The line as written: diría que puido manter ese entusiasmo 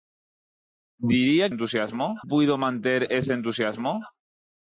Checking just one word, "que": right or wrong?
wrong